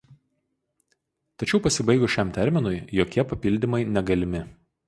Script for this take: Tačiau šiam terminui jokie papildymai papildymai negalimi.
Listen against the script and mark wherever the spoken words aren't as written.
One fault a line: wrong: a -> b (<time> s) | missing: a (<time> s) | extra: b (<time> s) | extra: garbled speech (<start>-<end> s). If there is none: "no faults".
extra: pasibaigus (1.6 s)
missing: papildymai (3.8 s)